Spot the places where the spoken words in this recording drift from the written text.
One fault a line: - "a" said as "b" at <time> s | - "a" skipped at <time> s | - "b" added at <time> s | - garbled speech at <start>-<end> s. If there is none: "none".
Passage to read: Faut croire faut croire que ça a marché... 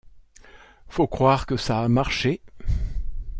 - "faut croire" skipped at 1.4 s